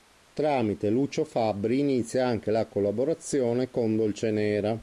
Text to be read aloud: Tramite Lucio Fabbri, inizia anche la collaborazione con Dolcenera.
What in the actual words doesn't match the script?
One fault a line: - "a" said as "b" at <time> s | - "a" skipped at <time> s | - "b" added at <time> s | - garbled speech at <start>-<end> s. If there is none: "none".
none